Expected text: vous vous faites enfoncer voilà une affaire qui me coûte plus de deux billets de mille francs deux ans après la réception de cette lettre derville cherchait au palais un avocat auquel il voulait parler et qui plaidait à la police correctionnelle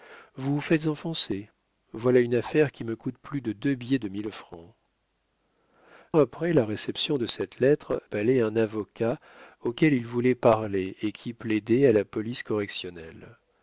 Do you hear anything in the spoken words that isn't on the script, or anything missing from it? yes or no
yes